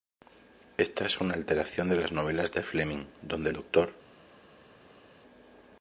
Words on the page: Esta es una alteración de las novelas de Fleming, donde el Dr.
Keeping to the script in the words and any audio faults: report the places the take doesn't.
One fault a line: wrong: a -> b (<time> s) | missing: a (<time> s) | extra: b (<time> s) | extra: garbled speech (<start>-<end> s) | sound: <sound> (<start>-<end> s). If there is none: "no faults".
no faults